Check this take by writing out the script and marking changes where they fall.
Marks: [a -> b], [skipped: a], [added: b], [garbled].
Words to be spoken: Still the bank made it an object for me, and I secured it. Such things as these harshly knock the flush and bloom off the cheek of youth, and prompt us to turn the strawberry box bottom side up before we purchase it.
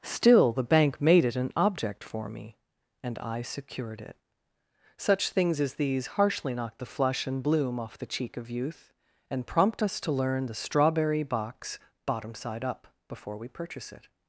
Still the bank made it an object for me, and I secured it. Such things as these harshly knock the flush and bloom off the cheek of youth, and prompt us to [turn -> learn] the strawberry box bottom side up before we purchase it.